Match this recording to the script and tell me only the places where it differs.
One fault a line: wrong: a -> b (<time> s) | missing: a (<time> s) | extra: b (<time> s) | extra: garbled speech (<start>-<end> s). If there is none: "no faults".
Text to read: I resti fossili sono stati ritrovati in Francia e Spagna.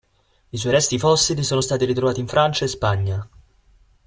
extra: suoi (0.6 s)